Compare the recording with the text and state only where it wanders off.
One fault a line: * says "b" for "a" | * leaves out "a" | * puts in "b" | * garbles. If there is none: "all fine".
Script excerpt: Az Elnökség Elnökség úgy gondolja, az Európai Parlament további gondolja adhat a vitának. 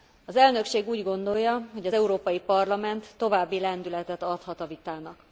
* leaves out "Elnökség"
* puts in "hogy"
* says "lendületet" for "gondolja"